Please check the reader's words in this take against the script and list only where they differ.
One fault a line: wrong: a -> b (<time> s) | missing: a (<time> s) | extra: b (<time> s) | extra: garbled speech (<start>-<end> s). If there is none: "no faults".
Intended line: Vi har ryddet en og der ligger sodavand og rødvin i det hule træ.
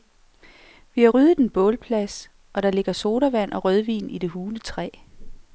extra: bålplads (1.5 s)